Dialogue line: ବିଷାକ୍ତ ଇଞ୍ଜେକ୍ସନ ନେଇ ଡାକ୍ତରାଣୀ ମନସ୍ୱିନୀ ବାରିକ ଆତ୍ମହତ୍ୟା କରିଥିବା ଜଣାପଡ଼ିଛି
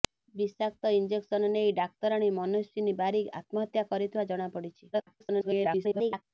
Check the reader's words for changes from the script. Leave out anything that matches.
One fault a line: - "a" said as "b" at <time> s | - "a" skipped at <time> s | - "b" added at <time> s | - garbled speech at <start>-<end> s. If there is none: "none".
- garbled speech at 4.9-6.2 s